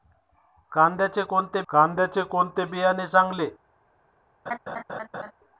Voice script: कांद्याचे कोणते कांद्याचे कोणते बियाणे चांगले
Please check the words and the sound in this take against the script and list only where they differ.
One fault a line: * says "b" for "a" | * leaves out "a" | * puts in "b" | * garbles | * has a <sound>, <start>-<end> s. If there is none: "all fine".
* has a laugh, 4.5-5.3 s